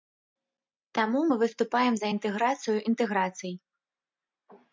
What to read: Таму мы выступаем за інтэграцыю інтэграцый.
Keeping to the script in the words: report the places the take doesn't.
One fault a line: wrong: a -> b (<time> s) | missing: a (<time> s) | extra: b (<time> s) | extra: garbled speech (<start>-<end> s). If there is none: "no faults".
no faults